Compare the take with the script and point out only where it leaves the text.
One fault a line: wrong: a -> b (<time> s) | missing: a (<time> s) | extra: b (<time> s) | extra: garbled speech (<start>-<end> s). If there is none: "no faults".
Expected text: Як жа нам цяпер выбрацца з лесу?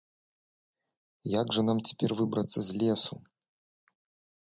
no faults